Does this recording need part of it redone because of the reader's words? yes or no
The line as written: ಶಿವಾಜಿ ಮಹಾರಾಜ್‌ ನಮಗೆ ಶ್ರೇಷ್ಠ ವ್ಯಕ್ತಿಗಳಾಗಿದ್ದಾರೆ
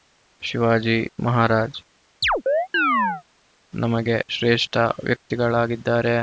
no